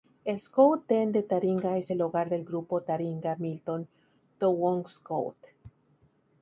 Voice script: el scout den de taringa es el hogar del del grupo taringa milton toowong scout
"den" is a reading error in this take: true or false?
false